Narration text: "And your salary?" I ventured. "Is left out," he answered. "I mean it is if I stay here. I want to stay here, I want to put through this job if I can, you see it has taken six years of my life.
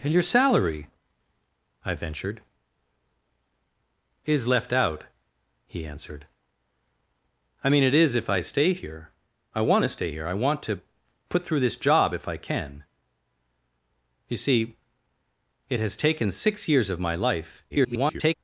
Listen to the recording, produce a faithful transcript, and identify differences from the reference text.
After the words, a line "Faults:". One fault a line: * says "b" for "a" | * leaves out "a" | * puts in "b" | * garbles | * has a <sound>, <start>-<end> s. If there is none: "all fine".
"And your salary?" I ventured. "Is left out," he answered. "I mean it is if I stay here. I want to stay here, I want to put through this job if I can, you see it has taken six years of my life. [garbled]
Faults:
* garbles